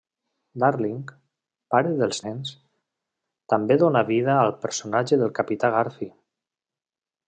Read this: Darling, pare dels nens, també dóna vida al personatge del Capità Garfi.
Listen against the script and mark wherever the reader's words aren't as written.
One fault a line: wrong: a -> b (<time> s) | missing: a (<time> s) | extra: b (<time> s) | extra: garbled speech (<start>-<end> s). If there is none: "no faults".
no faults